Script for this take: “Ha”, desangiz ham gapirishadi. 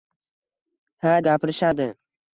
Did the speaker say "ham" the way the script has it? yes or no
no